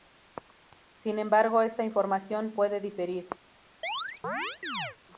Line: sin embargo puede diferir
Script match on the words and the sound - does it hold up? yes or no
no